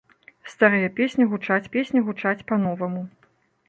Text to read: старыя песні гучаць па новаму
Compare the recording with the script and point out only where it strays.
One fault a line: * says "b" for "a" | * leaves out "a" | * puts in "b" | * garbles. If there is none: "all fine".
* puts in "песні гучаць"